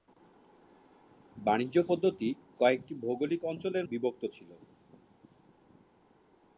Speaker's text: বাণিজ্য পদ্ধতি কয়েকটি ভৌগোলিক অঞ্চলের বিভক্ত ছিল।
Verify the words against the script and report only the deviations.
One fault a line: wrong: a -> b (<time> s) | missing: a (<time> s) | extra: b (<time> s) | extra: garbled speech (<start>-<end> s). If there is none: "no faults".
no faults